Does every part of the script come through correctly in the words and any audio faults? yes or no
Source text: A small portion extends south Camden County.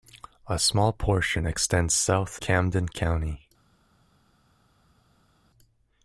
yes